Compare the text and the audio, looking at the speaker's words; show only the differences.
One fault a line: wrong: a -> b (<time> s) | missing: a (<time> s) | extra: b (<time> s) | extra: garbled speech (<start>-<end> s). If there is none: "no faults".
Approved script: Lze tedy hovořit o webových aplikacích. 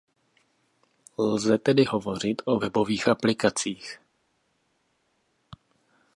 no faults